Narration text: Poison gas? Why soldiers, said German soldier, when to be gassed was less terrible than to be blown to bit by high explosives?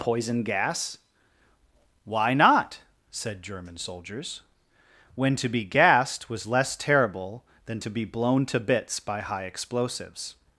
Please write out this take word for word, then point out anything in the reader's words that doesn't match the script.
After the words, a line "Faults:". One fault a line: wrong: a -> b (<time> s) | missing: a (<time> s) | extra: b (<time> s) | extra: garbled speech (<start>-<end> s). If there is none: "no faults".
Poison gas? Why not, said German soldiers, when to be gassed was less terrible than to be blown to bits by high explosives?
Faults:
wrong: soldiers -> not (2.3 s)
wrong: soldier -> soldiers (3.8 s)
wrong: bit -> bits (8.6 s)